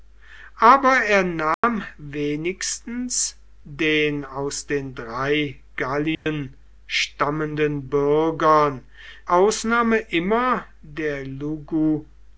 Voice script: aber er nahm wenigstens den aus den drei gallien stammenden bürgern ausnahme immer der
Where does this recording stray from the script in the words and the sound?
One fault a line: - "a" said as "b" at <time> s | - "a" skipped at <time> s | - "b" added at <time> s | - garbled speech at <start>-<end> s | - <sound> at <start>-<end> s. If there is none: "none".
- dropout at 1.5-1.6 s
- dropout at 6.1-6.3 s